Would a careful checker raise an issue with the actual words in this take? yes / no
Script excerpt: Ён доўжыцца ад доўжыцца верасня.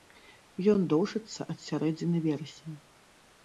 yes